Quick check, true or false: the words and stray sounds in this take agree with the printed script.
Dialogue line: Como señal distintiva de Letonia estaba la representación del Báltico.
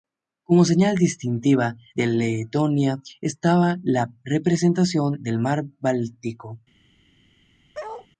false